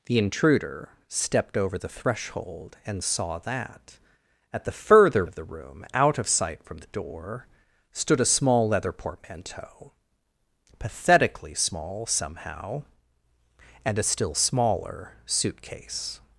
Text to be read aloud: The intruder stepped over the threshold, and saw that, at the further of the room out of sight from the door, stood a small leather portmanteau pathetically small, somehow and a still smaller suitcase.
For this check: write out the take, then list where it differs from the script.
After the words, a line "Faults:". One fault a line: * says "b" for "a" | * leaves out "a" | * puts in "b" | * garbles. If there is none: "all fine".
The intruder stepped over the threshold, and saw that, at the further of the room out of sight from the door, stood a small leather portmanteau pathetically small, somehow and a still smaller suitcase.
Faults:
all fine